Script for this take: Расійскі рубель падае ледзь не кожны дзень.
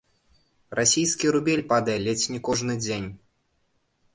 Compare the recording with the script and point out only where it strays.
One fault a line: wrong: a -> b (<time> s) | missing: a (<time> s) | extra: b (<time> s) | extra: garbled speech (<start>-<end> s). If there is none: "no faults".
no faults